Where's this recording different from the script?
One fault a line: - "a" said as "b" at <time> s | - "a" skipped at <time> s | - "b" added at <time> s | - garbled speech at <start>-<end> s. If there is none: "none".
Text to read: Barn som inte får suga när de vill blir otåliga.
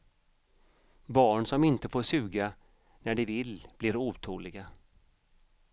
none